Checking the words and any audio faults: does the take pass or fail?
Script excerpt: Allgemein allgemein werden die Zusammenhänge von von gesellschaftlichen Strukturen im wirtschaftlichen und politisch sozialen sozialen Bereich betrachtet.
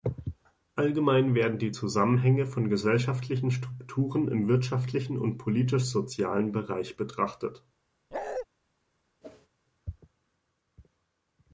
fail